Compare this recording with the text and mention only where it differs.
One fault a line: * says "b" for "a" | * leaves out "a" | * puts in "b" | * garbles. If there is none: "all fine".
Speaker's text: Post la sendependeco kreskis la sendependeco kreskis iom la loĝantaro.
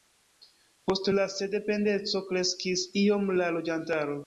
* leaves out "la sendependeco kreskis"